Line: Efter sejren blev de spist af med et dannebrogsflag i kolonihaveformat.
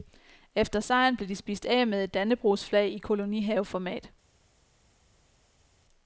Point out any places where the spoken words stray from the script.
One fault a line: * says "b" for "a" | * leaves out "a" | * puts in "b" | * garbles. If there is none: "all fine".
all fine